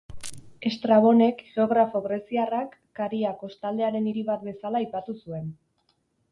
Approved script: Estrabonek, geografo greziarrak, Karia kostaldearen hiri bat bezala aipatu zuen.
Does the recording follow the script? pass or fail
pass